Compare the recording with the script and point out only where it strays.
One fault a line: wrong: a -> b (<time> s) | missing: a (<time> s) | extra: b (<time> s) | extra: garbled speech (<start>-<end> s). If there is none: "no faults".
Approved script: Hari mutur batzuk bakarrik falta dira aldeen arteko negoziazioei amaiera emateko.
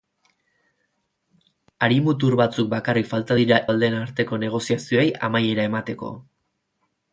no faults